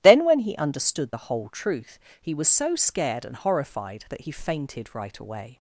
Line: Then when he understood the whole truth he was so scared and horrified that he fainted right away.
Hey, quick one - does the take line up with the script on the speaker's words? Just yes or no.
yes